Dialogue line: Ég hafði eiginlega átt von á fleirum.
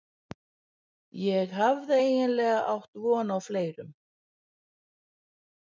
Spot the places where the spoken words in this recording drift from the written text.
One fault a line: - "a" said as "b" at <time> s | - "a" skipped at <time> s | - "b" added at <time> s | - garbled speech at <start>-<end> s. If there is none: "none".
none